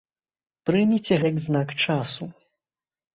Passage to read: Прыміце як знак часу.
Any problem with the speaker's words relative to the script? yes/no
no